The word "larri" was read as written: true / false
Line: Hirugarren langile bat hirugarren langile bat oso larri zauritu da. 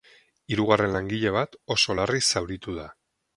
true